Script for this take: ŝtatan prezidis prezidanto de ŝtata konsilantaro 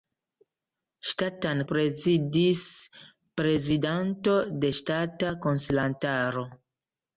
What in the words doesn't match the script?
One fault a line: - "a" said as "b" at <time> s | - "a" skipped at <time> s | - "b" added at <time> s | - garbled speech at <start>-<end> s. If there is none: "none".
none